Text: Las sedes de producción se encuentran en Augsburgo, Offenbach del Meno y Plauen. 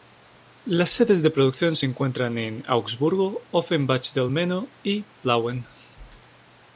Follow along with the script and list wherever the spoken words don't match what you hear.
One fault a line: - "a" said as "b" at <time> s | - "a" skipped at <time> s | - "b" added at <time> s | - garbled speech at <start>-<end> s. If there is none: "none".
none